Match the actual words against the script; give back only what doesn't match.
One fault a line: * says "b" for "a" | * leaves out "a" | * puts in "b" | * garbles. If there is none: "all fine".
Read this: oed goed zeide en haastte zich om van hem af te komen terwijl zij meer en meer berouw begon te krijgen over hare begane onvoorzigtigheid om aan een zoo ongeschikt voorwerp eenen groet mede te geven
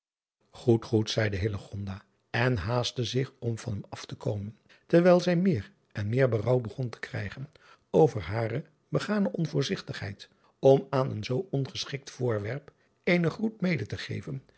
all fine